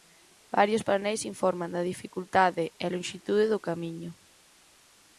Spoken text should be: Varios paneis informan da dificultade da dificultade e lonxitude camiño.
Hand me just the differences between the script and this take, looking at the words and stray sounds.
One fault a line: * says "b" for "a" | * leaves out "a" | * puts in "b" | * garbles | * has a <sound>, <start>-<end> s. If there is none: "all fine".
* leaves out "da dificultade"
* puts in "do"